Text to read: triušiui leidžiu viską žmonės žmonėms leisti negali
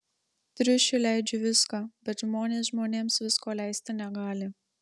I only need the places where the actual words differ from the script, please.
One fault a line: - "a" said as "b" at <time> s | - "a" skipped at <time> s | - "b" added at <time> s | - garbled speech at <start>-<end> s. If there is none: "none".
- "bet" added at 2.1 s
- "visko" added at 3.3 s